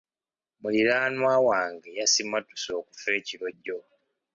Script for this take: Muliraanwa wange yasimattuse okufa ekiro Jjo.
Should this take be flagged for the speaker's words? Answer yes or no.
no